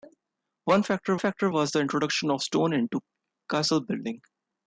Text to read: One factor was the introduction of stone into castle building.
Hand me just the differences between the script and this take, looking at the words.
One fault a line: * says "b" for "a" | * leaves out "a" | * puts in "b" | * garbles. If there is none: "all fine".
* puts in "factor"